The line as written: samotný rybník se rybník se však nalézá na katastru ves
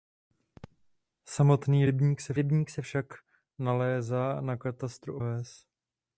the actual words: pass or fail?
pass